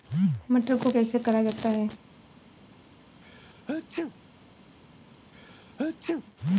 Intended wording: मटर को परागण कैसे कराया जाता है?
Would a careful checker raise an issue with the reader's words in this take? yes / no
yes